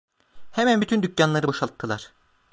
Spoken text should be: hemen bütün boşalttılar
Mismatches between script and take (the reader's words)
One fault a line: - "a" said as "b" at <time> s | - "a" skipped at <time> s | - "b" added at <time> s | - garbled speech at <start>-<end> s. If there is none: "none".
- "dükkanları" added at 1.0 s